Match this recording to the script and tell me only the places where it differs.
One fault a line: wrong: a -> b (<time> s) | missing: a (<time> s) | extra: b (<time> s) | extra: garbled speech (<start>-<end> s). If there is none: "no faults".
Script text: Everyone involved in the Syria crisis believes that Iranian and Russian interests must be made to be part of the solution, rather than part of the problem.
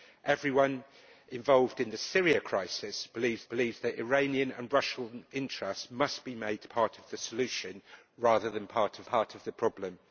extra: believes (3.4 s)
missing: be (6.7 s)
extra: part of (9.0 s)